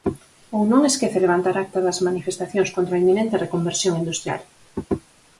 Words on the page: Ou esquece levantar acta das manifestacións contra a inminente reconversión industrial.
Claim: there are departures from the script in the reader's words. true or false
true